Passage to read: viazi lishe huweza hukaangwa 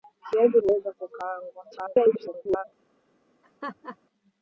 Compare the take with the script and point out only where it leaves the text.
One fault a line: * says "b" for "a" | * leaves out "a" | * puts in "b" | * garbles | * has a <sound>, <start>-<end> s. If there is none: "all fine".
* leaves out "lishe"
* garbles
* has a laugh, 3.4-4.0 s